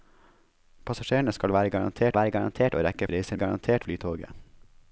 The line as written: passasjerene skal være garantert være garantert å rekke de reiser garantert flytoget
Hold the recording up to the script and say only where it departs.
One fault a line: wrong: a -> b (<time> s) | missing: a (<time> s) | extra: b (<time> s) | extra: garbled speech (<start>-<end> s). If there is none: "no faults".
no faults